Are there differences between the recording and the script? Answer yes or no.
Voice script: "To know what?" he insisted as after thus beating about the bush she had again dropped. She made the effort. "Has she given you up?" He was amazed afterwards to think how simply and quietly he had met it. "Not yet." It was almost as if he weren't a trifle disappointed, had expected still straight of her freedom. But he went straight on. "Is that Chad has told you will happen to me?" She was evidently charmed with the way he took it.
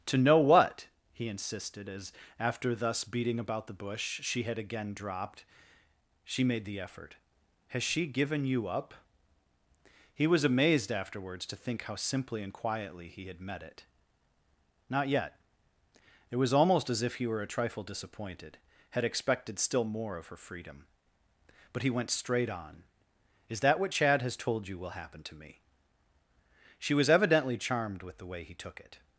yes